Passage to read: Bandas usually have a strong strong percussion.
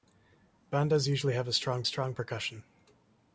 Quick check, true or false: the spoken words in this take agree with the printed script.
true